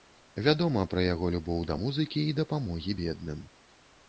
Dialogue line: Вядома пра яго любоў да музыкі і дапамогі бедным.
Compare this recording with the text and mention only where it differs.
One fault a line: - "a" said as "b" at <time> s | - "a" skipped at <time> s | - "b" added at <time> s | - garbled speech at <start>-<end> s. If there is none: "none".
none